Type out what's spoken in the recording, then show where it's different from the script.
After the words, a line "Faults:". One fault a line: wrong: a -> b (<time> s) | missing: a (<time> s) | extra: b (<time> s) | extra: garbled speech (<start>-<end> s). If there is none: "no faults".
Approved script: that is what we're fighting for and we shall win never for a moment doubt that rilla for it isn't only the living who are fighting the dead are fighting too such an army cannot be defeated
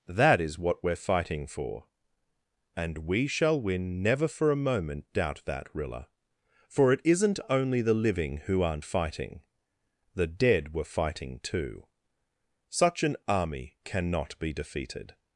that is what we're fighting for and we shall win never for a moment doubt that rilla for it isn't only the living who aren't fighting the dead were fighting too such an army cannot be defeated
Faults:
wrong: are -> aren't (8.6 s)
wrong: are -> were (10.7 s)